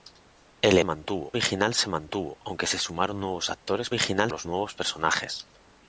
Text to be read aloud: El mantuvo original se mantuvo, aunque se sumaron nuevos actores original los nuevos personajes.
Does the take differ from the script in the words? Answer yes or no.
no